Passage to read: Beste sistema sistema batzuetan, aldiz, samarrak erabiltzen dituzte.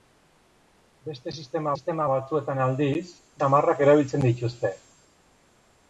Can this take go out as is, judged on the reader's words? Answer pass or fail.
pass